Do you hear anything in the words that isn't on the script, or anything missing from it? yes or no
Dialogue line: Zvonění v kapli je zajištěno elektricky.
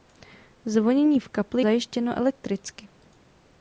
yes